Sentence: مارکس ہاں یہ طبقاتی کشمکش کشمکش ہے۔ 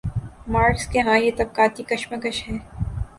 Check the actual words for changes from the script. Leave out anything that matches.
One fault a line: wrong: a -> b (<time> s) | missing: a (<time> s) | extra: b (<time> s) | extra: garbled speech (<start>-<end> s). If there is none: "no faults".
extra: کے (0.9 s)
missing: کشمکش (2.4 s)